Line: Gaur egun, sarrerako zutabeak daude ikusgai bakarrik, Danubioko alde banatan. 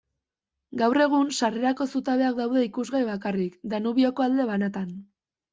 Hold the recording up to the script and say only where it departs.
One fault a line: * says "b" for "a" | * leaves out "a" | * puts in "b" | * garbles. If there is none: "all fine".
all fine